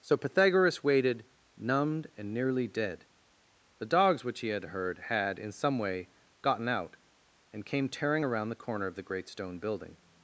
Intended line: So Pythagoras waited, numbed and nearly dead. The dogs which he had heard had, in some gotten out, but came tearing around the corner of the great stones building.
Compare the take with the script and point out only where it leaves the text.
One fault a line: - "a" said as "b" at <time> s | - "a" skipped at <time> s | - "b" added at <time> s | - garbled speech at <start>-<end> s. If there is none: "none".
- "way" added at 5.8 s
- "but" said as "and" at 7.5 s
- "stones" said as "stone" at 9.3 s